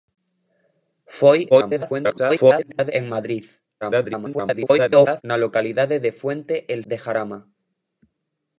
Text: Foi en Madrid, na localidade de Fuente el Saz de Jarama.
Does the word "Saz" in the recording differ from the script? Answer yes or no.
yes